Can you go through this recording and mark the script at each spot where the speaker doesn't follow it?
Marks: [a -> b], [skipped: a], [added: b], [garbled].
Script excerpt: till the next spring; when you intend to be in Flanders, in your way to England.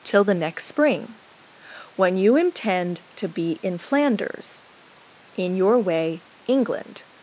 till the next spring; when you intend to be in Flanders, in your way [skipped: to] England.